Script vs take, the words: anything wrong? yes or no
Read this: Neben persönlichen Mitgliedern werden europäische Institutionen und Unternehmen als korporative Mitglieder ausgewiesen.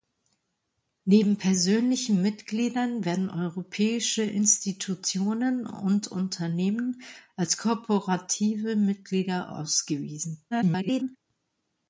yes